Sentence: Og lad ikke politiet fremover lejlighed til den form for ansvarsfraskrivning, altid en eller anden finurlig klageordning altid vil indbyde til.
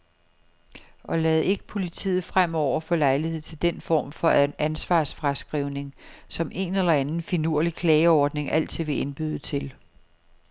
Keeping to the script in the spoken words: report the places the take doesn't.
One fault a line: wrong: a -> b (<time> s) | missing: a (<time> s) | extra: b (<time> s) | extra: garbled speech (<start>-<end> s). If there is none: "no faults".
extra: få (2.8 s)
wrong: altid -> som (6.3 s)